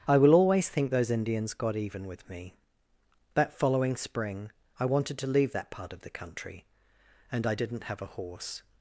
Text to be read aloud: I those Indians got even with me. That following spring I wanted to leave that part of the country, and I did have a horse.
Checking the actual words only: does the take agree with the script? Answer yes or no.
no